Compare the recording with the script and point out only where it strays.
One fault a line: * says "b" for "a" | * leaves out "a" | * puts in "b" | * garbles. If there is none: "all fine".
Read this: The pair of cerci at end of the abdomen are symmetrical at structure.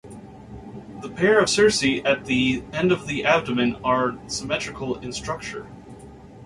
* puts in "the"
* says "in" for "at"